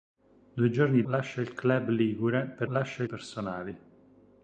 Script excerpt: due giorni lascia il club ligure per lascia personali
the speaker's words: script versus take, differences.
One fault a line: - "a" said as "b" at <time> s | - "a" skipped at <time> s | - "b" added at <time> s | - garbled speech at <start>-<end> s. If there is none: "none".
none